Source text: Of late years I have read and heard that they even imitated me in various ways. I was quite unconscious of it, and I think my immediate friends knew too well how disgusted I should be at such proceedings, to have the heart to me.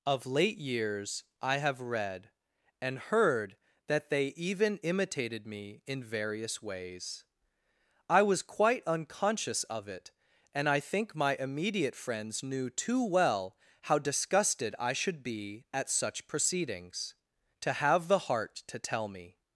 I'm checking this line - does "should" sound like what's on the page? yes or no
yes